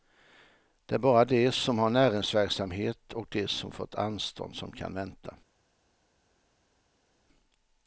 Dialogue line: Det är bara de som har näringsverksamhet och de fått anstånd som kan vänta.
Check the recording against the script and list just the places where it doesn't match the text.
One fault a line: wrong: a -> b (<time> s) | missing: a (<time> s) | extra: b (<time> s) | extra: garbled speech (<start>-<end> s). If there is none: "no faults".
extra: som (3.5 s)